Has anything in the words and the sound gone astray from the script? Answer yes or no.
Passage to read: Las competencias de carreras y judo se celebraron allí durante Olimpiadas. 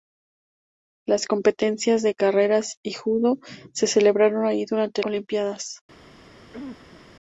yes